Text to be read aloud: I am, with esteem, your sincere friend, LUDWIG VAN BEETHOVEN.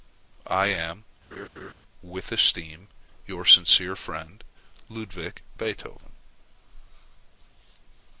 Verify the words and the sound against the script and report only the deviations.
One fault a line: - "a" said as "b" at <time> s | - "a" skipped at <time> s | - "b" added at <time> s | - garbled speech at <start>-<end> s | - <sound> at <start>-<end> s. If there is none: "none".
- laugh at 1.3-1.7 s
- "VAN" skipped at 5.4 s